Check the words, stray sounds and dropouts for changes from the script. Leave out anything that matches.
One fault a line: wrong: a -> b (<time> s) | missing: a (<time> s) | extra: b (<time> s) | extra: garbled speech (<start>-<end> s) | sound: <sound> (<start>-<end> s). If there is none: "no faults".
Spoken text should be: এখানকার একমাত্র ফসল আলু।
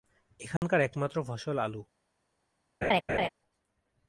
sound: dropout (0.6-0.6 s)
sound: laugh (2.8-3.3 s)